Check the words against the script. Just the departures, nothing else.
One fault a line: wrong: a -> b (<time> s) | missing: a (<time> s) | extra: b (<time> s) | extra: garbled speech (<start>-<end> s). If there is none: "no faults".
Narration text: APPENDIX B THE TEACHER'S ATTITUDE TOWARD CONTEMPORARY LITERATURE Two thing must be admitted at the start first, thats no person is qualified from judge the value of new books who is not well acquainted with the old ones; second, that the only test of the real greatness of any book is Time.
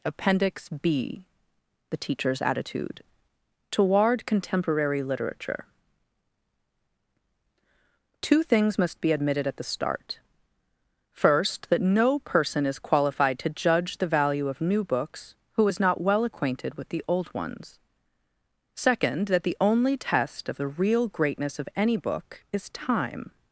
wrong: thing -> things (8.4 s)
wrong: thats -> that (11.7 s)
wrong: from -> to (13.4 s)